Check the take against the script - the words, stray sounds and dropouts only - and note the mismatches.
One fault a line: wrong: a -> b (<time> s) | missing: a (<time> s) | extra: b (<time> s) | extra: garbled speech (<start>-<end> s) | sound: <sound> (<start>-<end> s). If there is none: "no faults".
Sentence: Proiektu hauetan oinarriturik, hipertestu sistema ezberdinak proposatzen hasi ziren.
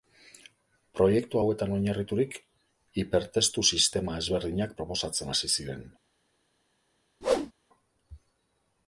sound: whoosh (7.2-7.5 s)